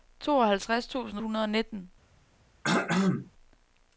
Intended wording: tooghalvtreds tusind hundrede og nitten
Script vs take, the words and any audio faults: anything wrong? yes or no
yes